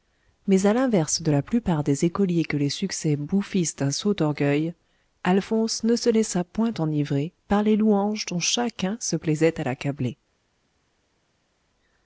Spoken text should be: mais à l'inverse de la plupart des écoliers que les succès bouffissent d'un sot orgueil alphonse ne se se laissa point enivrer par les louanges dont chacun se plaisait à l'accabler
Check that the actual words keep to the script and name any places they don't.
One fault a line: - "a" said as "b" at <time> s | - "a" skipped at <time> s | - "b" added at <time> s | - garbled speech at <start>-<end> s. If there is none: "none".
- "se" skipped at 6.1 s